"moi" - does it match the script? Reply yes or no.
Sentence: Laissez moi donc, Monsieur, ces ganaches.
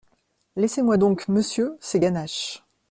yes